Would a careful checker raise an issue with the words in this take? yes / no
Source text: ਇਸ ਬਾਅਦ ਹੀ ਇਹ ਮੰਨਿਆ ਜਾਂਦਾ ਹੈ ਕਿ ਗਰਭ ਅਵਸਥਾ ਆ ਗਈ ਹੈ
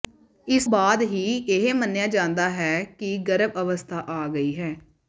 no